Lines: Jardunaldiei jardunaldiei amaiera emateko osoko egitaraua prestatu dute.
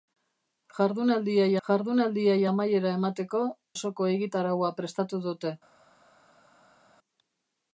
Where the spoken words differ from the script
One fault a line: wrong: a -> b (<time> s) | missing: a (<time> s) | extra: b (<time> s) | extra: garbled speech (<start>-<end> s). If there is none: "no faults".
no faults